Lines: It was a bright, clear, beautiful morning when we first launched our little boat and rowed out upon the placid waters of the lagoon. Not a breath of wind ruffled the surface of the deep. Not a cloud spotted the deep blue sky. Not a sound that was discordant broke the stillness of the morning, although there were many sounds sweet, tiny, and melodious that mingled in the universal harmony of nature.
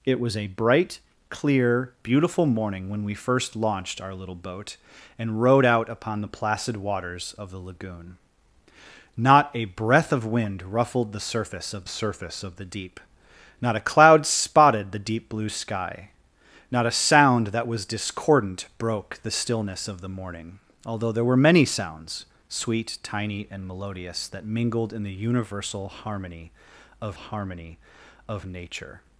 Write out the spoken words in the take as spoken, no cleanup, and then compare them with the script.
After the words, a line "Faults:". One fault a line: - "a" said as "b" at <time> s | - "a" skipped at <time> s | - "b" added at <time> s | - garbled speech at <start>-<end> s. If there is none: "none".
It was a bright, clear, beautiful morning when we first launched our little boat and rowed out upon the placid waters of the lagoon. Not a breath of wind ruffled the surface of surface of the deep. Not a cloud spotted the deep blue sky. Not a sound that was discordant broke the stillness of the morning, although there were many sounds sweet, tiny, and melodious that mingled in the universal harmony of harmony of nature.
Faults:
- "surface of" added at 11.9 s
- "harmony of" added at 27.1 s